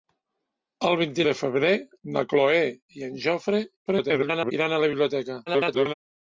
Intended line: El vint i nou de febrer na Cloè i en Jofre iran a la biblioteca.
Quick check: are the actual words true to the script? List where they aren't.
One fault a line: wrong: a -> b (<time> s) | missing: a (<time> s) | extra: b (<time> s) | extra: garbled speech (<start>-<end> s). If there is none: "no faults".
missing: nou (1.2 s)
extra: garbled speech (3.9-4.5 s)
extra: garbled speech (5.5-5.9 s)